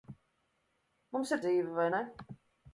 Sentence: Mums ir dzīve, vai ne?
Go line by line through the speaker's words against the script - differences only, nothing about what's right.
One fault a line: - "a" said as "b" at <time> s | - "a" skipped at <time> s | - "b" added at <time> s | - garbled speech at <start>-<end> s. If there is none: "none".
none